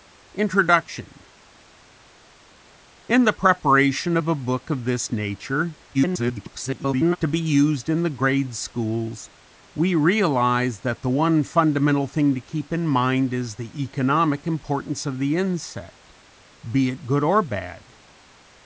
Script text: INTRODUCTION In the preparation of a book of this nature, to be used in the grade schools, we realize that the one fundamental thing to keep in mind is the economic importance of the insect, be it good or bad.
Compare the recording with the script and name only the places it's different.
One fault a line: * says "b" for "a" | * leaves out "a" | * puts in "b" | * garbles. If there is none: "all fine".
* garbles